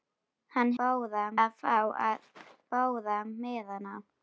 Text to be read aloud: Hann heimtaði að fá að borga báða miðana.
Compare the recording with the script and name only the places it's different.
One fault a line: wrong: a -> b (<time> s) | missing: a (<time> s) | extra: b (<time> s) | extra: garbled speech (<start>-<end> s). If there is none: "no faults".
wrong: heimtaði -> báða (0.8 s)
missing: borga (2.3 s)